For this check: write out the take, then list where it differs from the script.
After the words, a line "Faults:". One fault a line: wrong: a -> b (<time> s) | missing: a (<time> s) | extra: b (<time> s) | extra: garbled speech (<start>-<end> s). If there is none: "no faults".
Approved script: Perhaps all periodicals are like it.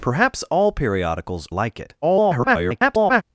Perhaps all periodicals like it. [garbled]
Faults:
missing: are (1.5 s)
extra: garbled speech (2.0-3.2 s)